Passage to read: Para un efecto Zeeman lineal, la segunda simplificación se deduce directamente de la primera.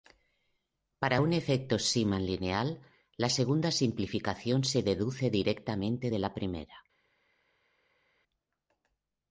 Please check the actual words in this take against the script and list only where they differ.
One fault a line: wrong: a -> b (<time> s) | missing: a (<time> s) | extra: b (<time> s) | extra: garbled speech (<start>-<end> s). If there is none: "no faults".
no faults